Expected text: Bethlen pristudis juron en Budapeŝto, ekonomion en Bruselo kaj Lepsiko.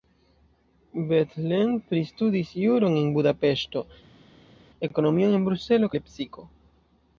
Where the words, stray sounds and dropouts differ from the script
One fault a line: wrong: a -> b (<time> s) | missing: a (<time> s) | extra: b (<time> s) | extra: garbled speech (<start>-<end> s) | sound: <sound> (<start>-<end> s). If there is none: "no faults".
missing: kaj (5.9 s)